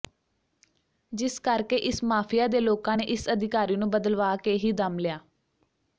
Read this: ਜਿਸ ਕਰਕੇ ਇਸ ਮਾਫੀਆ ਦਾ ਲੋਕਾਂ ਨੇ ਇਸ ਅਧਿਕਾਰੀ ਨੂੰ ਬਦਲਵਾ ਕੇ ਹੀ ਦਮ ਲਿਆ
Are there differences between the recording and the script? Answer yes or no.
yes